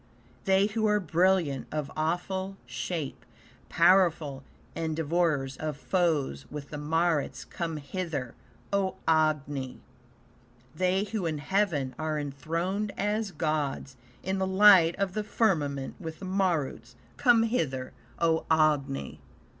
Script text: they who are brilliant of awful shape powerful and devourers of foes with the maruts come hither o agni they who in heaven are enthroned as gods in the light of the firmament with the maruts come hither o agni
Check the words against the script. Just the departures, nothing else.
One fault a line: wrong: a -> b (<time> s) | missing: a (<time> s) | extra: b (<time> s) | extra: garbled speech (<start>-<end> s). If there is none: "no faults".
no faults